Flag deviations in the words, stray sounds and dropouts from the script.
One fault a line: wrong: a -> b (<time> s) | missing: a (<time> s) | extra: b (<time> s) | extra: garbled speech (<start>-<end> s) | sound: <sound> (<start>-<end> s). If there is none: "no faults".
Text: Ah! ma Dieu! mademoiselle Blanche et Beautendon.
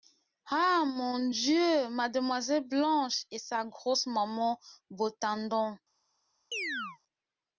wrong: ma -> mon (0.9 s)
extra: sa grosse maman (3.4 s)
sound: chirp (6.5-7.0 s)